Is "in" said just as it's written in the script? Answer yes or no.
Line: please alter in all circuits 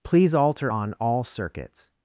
no